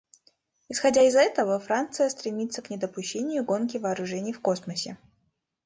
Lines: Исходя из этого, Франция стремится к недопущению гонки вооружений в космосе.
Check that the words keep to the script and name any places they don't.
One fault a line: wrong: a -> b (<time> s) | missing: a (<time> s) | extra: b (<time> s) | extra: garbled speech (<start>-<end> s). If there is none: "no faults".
no faults